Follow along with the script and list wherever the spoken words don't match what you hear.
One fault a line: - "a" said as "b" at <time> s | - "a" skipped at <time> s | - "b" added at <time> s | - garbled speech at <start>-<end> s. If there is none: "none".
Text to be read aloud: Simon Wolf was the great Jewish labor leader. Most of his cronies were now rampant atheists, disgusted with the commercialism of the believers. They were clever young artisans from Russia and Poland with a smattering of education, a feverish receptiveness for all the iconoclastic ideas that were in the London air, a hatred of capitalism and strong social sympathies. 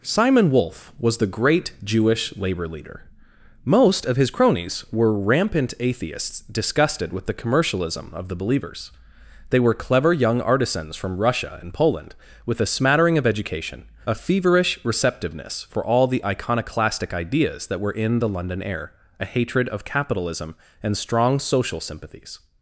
- "now" skipped at 5.2 s